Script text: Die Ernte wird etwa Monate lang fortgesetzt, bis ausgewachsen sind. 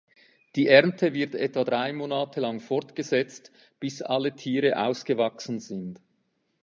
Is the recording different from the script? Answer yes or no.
yes